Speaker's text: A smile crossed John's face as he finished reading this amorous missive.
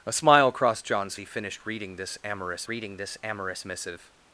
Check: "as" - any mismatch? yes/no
yes